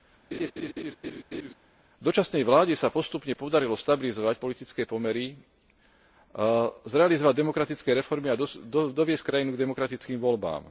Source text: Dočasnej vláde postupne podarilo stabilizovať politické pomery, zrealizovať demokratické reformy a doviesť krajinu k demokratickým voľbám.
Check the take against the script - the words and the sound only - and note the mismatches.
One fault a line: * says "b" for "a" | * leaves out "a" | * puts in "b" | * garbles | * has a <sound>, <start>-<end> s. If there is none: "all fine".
* has a laugh, 0.3-1.5 s
* puts in "sa"